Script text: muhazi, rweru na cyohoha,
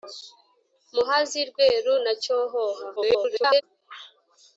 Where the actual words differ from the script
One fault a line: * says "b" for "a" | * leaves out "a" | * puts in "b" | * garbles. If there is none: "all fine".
* garbles